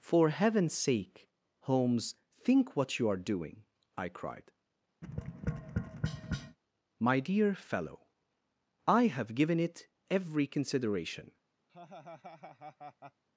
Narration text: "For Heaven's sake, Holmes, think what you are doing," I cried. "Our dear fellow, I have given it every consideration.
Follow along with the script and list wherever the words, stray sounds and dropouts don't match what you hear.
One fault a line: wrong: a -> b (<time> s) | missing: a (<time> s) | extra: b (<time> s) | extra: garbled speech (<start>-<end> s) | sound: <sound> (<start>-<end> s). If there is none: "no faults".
sound: tap (5.0-6.6 s)
wrong: Our -> My (7.0 s)
sound: laugh (11.7-13.2 s)